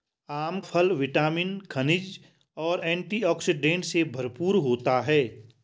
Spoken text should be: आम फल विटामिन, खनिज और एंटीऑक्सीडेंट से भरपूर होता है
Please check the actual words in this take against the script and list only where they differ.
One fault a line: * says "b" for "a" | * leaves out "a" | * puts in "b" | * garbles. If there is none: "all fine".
all fine